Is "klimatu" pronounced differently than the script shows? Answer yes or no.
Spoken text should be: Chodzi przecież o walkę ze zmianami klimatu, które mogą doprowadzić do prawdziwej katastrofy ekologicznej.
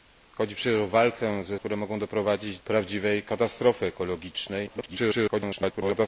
yes